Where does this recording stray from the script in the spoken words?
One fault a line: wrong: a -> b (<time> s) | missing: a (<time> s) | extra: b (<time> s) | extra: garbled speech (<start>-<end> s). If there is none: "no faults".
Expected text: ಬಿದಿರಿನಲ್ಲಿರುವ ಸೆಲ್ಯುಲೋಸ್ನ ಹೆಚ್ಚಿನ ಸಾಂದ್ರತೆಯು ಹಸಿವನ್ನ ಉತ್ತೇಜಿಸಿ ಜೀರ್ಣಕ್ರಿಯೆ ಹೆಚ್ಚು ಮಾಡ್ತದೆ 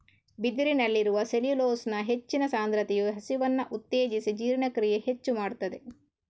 no faults